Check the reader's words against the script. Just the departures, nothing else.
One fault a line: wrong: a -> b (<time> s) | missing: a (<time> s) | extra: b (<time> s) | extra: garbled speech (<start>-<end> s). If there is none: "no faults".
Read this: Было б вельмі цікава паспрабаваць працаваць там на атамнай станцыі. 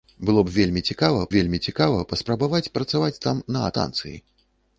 extra: вельмі цікава (1.3 s)
missing: атамнай (3.7 s)